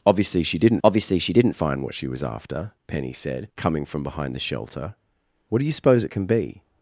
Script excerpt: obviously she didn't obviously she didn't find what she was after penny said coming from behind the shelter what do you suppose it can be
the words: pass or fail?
pass